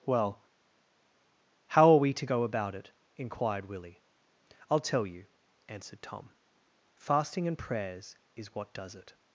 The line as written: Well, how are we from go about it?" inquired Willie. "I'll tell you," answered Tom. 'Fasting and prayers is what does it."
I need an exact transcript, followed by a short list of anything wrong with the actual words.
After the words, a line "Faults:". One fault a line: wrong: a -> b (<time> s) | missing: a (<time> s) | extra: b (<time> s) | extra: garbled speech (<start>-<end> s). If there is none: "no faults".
Well, how are we to go about it?" inquired Willie. "I'll tell you," answered Tom. 'Fasting and prayers is what does it."
Faults:
wrong: from -> to (2.1 s)